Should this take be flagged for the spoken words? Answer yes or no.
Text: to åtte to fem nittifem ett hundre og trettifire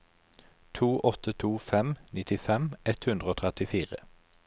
no